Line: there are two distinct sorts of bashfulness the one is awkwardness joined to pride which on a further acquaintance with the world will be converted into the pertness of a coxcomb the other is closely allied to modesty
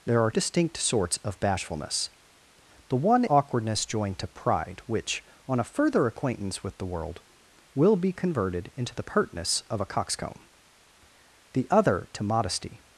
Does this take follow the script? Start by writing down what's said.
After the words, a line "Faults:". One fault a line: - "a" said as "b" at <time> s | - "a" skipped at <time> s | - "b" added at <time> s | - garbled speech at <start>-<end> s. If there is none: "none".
there are distinct sorts of bashfulness the one awkwardness joined to pride which on a further acquaintance with the world will be converted into the pertness of a coxcomb the other to modesty
Faults:
- "two" skipped at 0.3 s
- "is" skipped at 3.2 s
- "is closely allied" skipped at 12.1 s